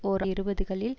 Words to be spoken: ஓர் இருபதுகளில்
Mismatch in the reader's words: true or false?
false